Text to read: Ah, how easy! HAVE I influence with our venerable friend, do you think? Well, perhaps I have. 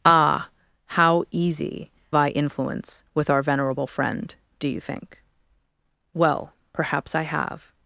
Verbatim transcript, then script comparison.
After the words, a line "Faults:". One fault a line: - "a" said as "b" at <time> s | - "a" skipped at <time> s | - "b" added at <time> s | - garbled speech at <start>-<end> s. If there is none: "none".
Ah, how easy! I influence with our venerable friend, do you think? Well, perhaps I have.
Faults:
- "HAVE" skipped at 1.9 s